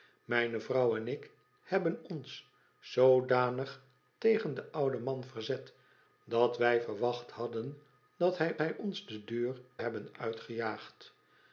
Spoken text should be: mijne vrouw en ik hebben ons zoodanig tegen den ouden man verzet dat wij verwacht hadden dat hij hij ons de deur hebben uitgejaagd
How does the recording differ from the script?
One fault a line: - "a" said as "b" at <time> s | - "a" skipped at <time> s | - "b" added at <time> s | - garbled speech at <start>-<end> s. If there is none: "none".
none